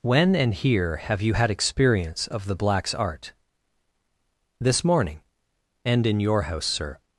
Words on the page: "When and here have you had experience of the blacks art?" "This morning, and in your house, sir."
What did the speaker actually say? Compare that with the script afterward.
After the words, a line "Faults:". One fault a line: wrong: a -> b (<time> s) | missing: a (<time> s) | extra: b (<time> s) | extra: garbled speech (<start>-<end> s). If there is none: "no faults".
"When and here have you had experience of the blacks art?" "This morning, and in your house, sir."
Faults:
no faults